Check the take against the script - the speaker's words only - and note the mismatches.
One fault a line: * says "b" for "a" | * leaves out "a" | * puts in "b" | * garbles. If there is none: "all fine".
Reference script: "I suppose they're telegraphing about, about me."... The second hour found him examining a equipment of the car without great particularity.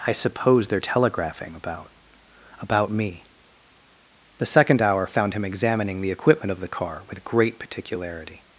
* says "the" for "a"
* says "with" for "without"